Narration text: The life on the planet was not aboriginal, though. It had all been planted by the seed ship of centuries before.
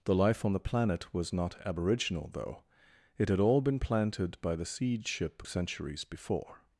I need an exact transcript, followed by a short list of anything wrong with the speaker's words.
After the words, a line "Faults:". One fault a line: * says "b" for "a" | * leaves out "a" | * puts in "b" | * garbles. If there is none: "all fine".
The life on the planet was not aboriginal, though. It had all been planted by the seed ship centuries before.
Faults:
* leaves out "of"